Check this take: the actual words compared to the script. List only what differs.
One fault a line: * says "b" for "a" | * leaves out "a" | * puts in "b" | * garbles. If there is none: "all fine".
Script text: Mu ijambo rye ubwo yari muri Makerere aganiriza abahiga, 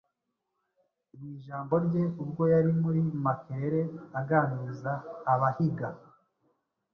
all fine